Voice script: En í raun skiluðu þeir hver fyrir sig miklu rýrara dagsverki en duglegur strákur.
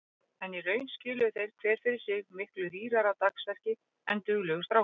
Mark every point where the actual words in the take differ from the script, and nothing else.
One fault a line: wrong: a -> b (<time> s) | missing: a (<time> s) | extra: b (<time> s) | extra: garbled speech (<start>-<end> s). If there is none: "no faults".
no faults